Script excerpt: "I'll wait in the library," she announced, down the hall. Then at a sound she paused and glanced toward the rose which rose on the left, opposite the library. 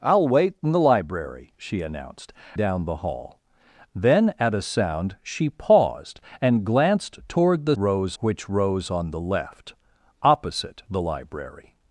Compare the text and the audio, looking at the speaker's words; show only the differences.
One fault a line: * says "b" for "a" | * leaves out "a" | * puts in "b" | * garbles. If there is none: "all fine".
all fine